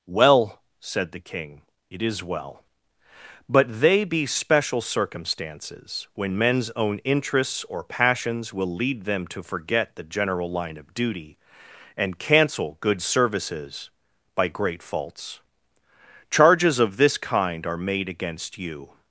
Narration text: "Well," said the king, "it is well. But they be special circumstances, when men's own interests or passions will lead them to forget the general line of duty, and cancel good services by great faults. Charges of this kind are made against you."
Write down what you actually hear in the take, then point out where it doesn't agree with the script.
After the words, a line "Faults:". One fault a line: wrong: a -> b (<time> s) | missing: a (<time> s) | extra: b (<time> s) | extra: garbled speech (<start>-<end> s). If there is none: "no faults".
"Well," said the king, "it is well. But they be special circumstances, when men's own interests or passions will lead them to forget the general line of duty, and cancel good services by great faults. Charges of this kind are made against you."
Faults:
no faults